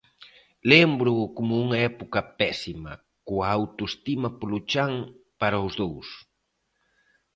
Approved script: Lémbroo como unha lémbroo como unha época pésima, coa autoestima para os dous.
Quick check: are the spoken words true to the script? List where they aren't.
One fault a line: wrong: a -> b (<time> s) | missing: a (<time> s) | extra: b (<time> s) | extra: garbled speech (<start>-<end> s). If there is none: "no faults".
missing: lémbroo como unha (1.8 s)
extra: polo chan (4.4 s)